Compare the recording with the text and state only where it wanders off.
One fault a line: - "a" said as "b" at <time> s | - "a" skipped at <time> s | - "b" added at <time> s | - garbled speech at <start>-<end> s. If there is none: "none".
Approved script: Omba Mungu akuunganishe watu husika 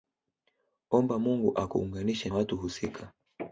none